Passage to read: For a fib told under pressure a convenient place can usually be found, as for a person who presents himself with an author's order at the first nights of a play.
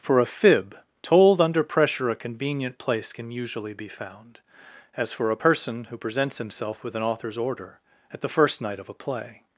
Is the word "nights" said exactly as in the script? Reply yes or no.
no